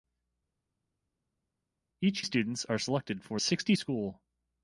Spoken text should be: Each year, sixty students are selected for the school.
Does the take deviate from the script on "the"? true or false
true